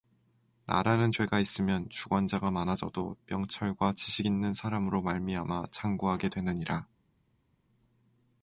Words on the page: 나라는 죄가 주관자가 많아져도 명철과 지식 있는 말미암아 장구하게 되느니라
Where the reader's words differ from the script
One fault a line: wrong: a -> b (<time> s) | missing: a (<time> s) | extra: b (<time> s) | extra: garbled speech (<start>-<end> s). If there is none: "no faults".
extra: 있으면 (1.4 s)
extra: 사람으로 (4.5 s)